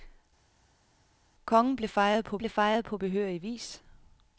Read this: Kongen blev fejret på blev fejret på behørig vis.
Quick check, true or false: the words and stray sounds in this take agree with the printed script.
true